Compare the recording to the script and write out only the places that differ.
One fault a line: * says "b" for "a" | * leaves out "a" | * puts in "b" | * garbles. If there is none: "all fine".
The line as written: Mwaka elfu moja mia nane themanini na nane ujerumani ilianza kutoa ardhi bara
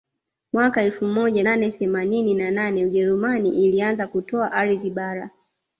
* leaves out "mia"